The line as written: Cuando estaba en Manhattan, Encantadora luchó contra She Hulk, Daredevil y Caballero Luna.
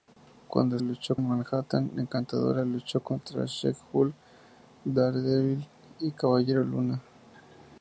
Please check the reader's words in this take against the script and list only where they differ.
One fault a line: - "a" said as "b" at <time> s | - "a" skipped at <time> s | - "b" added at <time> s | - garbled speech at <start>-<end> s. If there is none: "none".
- "estaba" said as "luchó" at 0.8 s